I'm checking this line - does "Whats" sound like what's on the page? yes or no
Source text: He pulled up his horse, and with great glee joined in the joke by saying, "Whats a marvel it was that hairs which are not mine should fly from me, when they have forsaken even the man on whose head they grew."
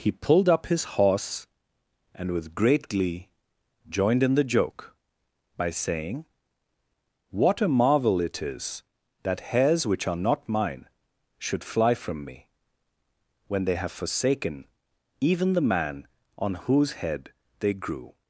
no